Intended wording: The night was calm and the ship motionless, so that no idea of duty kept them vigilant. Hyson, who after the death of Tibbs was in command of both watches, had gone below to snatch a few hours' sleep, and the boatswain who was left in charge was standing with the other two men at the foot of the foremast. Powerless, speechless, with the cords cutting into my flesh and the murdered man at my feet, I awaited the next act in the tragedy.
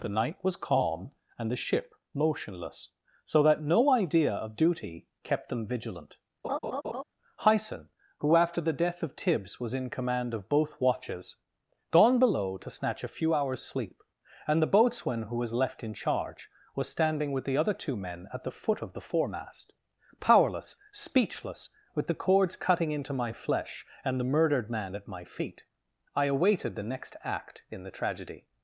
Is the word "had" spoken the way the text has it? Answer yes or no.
no